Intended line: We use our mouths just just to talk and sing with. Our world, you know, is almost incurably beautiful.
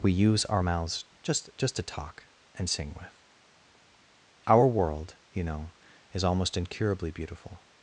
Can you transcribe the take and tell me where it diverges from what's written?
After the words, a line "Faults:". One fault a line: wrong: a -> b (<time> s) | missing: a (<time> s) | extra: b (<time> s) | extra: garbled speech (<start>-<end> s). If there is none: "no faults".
We use our mouths just just to talk and sing with. Our world, you know, is almost incurably beautiful.
Faults:
no faults